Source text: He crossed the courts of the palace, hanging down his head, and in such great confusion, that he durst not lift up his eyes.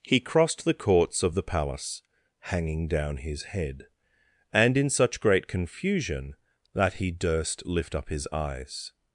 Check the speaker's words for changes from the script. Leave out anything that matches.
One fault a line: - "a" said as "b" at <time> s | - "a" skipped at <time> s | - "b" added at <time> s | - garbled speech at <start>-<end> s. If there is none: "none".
- "not" skipped at 7.7 s